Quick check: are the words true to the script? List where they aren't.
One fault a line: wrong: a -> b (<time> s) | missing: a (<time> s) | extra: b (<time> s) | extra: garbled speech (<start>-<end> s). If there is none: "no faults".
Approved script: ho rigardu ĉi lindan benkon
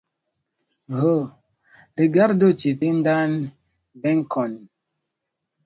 no faults